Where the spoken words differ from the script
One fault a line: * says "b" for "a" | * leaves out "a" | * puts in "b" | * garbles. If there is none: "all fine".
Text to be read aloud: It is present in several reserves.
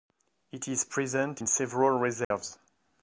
all fine